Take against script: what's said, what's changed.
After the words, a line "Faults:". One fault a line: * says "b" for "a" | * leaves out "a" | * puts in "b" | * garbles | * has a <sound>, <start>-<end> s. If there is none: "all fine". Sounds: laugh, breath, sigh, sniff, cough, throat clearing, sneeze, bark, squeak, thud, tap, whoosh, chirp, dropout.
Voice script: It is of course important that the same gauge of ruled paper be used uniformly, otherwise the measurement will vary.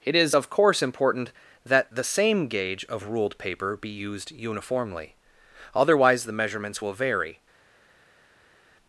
It is of course important that the same gauge of ruled paper be used uniformly, otherwise the measurements will vary.
Faults:
* says "measurements" for "measurement"